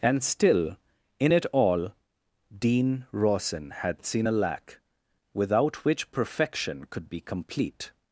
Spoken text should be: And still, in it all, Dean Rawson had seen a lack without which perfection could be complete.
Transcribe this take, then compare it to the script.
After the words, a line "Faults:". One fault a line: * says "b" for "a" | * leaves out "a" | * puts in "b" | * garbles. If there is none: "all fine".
And still, in it all, Dean Rawson had seen a lack without which perfection could be complete.
Faults:
all fine